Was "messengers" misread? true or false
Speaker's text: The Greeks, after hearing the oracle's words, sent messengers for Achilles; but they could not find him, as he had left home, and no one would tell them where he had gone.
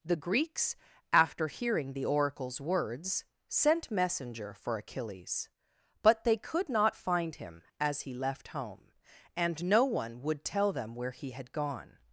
true